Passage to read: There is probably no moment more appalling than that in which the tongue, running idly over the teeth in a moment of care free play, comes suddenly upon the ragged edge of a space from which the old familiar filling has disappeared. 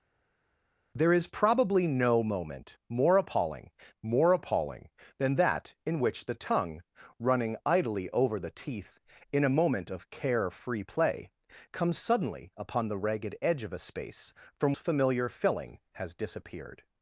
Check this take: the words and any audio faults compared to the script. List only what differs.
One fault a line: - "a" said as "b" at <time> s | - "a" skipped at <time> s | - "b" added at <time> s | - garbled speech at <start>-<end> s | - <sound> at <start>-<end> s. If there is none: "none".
- "more appalling" added at 4.0 s
- "which the old" skipped at 14.8 s